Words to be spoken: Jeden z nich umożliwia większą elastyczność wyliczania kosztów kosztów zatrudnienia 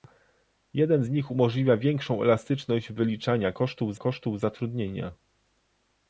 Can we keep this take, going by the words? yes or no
yes